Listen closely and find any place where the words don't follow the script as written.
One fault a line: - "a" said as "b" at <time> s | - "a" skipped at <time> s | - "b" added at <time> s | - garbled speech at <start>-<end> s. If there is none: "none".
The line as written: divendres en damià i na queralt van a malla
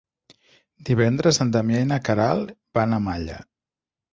none